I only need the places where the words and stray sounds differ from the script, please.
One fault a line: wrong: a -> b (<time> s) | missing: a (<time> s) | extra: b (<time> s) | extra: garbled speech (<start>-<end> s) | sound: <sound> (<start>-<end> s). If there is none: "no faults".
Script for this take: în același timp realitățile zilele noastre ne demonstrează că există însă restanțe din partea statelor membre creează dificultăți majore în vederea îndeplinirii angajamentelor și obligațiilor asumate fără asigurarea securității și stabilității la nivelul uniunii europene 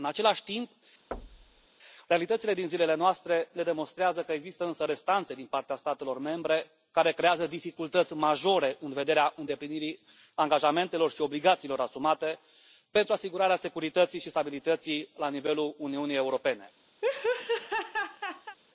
sound: thud (1.1-1.7 s)
extra: din (2.5 s)
extra: care (6.9 s)
wrong: fără -> pentru (12.9 s)
sound: laugh (17.0-18.6 s)